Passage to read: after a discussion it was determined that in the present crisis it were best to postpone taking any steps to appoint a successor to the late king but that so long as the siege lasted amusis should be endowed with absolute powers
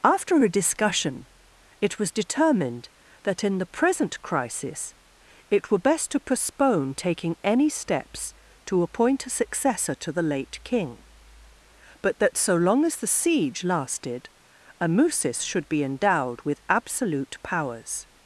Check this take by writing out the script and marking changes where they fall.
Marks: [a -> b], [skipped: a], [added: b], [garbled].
after a discussion it was determined that in the present crisis it were best to postpone taking any steps to appoint a successor to the late king but that so long as the siege lasted amusis should be endowed with absolute powers